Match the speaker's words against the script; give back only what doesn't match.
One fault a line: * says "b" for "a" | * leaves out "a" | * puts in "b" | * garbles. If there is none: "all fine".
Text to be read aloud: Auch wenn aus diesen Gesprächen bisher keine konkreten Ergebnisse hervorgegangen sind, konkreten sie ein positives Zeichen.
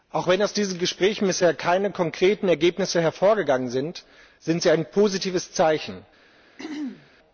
* says "sind" for "konkreten"